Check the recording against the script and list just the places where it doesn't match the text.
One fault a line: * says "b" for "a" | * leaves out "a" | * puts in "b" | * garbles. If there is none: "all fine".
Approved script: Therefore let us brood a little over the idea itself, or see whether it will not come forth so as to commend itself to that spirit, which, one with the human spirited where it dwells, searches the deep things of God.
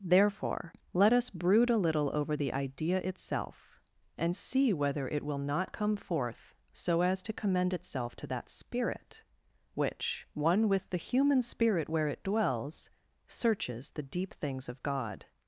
* says "and" for "or"
* says "spirit" for "spirited"